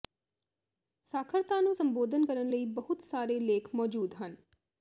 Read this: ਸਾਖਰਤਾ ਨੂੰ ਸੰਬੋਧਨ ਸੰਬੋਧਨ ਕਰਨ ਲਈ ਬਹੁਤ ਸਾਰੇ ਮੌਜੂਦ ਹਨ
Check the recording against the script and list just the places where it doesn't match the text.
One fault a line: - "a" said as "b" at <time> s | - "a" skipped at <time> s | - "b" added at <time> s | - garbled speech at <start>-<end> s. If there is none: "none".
- "ਸੰਬੋਧਨ" skipped at 2.2 s
- "ਲੇਖ" added at 3.4 s